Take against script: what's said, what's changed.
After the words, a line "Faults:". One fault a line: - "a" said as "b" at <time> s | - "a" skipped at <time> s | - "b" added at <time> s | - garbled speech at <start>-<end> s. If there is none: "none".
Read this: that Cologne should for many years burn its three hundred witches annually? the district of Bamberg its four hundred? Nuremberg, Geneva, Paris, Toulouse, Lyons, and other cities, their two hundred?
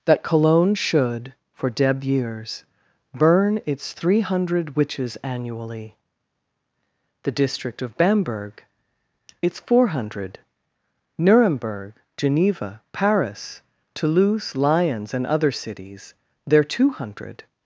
that Cologne should for deb years burn its three hundred witches annually? the district of Bamberg its four hundred? Nuremberg, Geneva, Paris, Toulouse, Lyons, and other cities, their two hundred?
Faults:
- "many" said as "deb" at 1.7 s